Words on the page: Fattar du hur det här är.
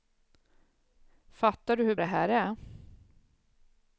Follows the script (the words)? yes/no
yes